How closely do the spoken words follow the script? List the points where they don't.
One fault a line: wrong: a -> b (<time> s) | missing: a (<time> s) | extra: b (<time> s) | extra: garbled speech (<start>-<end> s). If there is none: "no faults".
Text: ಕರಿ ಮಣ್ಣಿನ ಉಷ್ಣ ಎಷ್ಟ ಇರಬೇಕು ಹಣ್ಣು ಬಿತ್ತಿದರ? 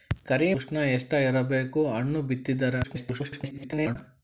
missing: ಮಣ್ಣಿನ (0.5 s)
extra: garbled speech (2.8-4.0 s)